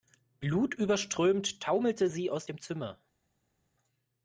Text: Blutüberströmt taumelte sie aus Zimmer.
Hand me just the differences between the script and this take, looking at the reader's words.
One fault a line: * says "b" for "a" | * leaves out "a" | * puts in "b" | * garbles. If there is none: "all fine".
* puts in "dem"